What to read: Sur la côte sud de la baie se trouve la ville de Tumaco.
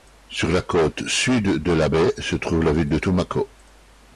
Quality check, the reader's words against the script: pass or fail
pass